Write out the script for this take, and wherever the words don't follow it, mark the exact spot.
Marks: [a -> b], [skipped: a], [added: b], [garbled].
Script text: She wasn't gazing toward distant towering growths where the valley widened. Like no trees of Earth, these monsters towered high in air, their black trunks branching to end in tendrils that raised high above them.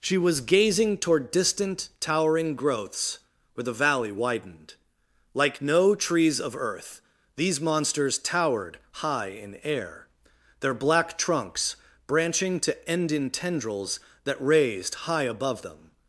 She [wasn't -> was] gazing toward distant towering growths where the valley widened. Like no trees of Earth, these monsters towered high in air, their black trunks branching to end in tendrils that raised high above them.